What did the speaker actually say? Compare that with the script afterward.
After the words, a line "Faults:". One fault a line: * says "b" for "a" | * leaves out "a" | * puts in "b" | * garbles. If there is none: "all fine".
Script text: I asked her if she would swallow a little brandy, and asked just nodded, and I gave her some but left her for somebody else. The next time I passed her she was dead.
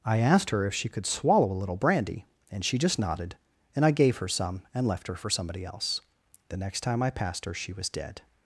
I asked her if she could swallow a little brandy, and she just nodded, and I gave her some and left her for somebody else. The next time I passed her she was dead.
Faults:
* says "could" for "would"
* says "she" for "asked"
* says "and" for "but"